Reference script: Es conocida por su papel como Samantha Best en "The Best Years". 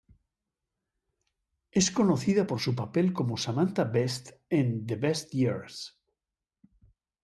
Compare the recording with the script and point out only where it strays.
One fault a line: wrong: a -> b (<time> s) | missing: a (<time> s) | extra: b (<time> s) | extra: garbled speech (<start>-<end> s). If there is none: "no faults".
no faults